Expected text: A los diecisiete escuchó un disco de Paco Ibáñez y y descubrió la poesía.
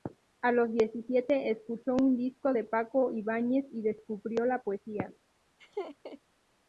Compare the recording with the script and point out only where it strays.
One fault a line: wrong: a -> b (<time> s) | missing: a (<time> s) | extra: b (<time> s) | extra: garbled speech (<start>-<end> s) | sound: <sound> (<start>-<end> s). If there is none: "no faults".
missing: y (3.8 s)
sound: laugh (5.6-6.2 s)